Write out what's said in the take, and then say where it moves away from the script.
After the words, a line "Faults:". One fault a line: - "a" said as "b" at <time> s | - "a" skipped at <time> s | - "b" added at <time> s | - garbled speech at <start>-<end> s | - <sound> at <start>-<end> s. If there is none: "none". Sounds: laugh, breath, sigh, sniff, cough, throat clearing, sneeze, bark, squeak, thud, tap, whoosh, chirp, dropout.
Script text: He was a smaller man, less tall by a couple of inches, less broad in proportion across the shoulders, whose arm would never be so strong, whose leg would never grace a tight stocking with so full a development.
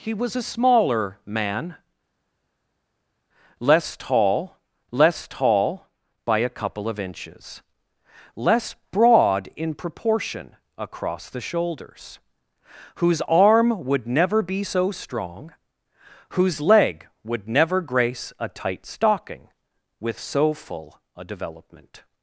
He was a smaller man, less tall less tall by a couple of inches, less broad in proportion across the shoulders, whose arm would never be so strong, whose leg would never grace a tight stocking with so full a development.
Faults:
- "less tall" added at 4.9 s